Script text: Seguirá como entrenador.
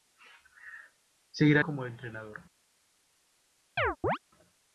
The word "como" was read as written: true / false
true